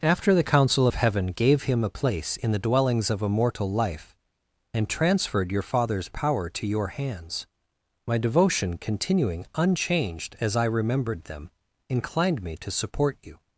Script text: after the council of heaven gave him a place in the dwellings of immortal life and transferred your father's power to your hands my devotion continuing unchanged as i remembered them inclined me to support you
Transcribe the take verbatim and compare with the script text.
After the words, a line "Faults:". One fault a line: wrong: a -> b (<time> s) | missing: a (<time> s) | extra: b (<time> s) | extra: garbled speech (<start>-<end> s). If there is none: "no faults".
after the council of heaven gave him a place in the dwellings of immortal life and transferred your father's power to your hands my devotion continuing unchanged as i remembered them inclined me to support you
Faults:
no faults